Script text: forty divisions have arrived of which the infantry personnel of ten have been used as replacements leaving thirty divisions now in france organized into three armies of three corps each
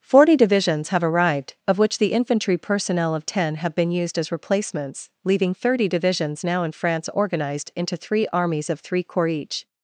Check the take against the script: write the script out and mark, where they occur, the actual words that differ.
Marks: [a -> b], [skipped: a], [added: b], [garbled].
forty divisions have arrived of which the infantry personnel of ten have been used as replacements leaving thirty divisions now in france organized into three armies of three corps each